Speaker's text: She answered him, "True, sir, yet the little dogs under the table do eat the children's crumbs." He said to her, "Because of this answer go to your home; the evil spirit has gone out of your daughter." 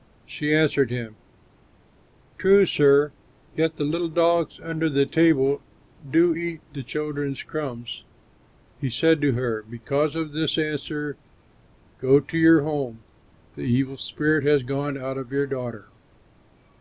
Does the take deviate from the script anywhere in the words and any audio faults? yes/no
no